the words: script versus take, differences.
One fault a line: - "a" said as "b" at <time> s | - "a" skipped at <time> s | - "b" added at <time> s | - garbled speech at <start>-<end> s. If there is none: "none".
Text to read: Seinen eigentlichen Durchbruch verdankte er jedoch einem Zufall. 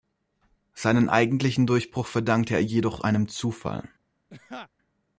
none